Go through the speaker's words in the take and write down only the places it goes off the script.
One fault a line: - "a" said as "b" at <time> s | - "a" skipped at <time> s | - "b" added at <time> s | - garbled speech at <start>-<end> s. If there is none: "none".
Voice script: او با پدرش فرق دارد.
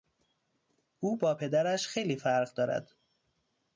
- "خیلی" added at 1.9 s